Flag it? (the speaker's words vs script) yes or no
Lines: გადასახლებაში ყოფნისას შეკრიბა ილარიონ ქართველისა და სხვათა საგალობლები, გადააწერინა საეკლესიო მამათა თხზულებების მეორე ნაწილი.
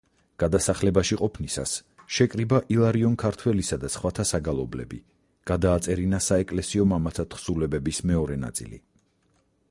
no